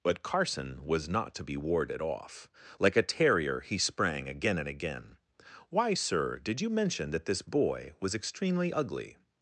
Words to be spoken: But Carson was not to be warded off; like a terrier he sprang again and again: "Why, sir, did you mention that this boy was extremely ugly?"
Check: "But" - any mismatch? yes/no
no